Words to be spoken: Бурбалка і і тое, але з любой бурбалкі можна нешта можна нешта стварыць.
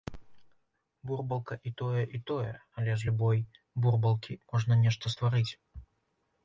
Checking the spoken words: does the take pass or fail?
fail